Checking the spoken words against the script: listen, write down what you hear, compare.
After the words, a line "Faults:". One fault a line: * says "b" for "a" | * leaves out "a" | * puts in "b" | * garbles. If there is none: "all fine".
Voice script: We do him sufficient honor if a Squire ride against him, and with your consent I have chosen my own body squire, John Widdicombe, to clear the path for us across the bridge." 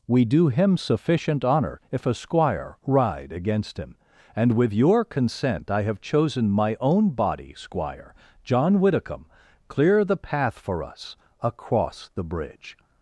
We do him sufficient honor if a Squire ride against him, and with your consent I have chosen my own body squire, John Widdicombe, clear the path for us across the bridge."
Faults:
* leaves out "to"